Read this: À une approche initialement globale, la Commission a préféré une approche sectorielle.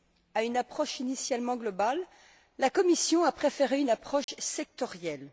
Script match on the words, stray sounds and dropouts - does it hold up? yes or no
no